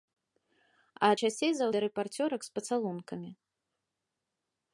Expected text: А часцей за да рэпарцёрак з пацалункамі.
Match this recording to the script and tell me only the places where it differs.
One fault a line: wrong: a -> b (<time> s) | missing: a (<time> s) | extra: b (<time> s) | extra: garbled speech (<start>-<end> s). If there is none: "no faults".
no faults